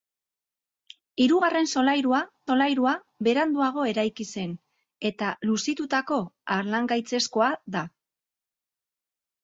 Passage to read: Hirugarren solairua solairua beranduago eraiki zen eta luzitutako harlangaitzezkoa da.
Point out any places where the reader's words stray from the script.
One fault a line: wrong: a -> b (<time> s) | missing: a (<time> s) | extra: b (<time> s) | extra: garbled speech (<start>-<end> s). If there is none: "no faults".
no faults